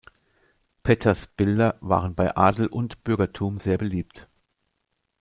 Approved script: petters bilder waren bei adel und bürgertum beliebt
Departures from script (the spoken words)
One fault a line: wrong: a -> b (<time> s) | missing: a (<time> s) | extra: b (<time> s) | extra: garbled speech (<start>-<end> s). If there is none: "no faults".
extra: sehr (3.6 s)